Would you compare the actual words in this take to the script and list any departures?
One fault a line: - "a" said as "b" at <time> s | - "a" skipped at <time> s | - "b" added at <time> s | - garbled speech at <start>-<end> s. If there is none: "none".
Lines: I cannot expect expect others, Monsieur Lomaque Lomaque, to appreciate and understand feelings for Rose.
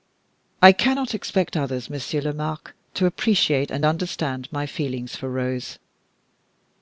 - "expect" skipped at 1.6 s
- "Lomaque" skipped at 2.7 s
- "my" added at 4.5 s